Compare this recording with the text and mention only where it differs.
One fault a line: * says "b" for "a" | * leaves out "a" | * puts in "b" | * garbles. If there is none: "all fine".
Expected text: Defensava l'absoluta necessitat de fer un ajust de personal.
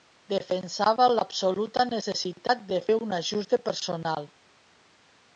all fine